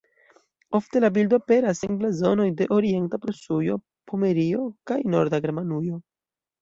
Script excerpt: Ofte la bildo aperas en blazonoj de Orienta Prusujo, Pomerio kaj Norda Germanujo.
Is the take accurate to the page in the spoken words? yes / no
yes